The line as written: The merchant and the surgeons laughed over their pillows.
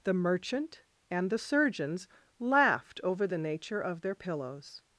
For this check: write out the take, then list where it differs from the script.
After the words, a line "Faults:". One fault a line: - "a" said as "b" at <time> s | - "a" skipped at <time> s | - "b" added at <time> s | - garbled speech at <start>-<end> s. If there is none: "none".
The merchant and the surgeons laughed over the nature of their pillows.
Faults:
- "the nature of" added at 3.3 s